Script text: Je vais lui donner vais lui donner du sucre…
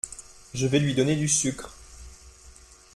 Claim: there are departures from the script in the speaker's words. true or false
true